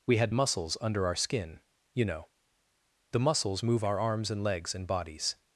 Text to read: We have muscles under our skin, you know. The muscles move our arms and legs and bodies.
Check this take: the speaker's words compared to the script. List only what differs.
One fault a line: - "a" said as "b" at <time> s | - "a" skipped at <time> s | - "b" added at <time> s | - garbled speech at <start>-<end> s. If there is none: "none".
- "have" said as "had" at 0.2 s